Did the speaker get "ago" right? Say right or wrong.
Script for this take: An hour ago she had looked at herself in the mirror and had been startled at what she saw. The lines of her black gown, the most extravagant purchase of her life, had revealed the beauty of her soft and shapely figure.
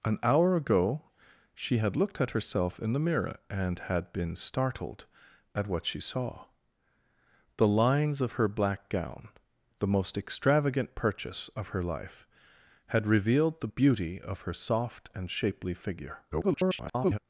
right